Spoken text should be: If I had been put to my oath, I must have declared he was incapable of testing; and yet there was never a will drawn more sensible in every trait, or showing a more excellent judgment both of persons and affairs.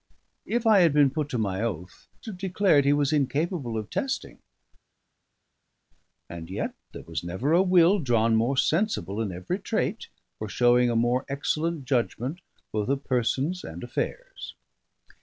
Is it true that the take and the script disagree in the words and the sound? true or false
true